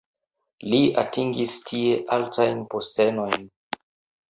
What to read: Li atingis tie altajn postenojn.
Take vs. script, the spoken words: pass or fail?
pass